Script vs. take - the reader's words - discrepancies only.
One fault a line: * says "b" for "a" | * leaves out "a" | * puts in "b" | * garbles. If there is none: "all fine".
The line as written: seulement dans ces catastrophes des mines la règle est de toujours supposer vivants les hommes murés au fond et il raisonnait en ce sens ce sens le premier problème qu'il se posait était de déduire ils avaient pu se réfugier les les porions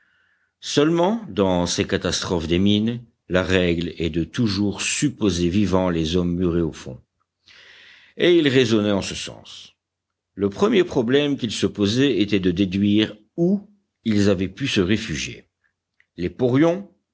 * leaves out "ce sens"
* puts in "où"
* leaves out "les"